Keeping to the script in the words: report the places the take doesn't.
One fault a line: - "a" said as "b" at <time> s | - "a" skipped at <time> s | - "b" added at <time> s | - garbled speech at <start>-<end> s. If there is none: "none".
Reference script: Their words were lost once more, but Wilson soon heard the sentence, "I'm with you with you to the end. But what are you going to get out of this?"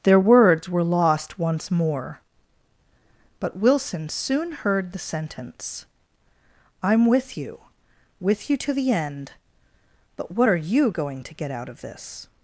none